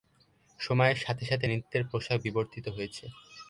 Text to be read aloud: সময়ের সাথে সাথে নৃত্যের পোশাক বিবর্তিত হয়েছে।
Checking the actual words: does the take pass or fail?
pass